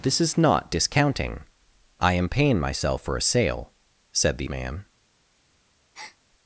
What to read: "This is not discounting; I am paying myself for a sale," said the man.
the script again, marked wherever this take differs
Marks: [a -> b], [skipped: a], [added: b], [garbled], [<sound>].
"This is not discounting; I am paying myself for a sale," said the man. [breath]